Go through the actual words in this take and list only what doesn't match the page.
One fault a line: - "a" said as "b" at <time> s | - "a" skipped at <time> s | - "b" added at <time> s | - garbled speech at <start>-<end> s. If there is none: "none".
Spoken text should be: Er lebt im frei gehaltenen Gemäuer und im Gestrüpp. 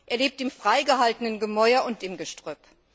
none